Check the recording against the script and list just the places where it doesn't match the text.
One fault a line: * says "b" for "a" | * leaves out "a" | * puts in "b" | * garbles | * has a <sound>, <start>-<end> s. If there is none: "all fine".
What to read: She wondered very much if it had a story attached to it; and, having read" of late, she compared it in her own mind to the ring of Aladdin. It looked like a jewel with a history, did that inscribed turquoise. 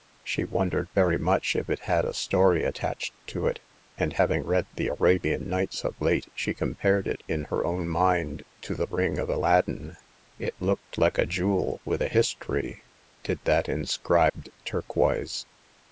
* puts in "the Arabian Nights"
* has a dropout, 14.3-14.3 s